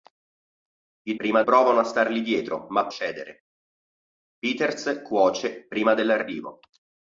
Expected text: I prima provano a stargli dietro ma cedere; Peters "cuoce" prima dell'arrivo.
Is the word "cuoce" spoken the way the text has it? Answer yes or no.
yes